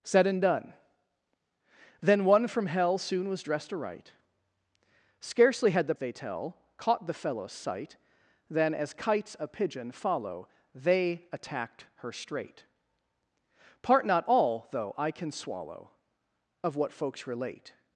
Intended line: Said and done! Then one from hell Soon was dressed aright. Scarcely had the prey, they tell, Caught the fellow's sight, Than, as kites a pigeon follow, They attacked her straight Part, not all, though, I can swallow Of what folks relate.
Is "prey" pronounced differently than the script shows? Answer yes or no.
yes